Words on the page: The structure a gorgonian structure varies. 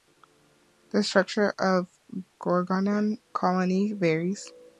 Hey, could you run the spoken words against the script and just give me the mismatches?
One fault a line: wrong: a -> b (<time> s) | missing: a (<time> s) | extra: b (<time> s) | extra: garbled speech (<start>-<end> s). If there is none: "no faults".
extra: of (1.6 s)
wrong: structure -> colony (3.3 s)